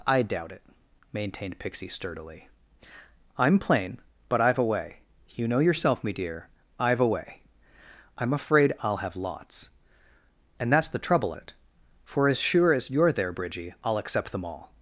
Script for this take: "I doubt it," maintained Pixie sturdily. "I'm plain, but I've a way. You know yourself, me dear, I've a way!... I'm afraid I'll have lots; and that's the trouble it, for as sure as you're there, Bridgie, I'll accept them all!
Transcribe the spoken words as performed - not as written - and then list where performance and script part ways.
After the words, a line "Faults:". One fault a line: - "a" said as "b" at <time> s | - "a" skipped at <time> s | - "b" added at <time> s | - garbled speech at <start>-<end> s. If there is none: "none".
"I doubt it," maintained Pixie sturdily. "I'm plain, but I've a way. You know yourself, me dear, I've a way!... I'm afraid I'll have lots; and that's the trouble it, for as sure as you're there, Bridgie, I'll accept them all!
Faults:
none